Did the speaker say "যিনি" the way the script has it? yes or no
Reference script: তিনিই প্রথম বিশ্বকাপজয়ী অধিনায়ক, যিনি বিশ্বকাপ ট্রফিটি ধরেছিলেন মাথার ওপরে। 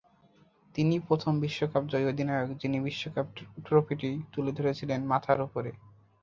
yes